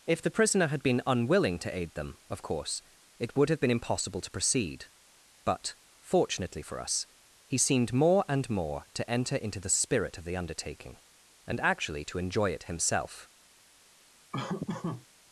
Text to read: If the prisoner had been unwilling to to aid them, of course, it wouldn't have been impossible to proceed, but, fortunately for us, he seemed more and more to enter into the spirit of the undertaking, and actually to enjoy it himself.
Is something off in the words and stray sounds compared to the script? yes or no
yes